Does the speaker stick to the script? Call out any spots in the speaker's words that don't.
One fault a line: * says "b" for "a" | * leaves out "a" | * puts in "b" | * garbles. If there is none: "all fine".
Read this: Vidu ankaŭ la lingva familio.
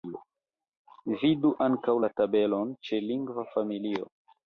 * puts in "tabelon ĉe"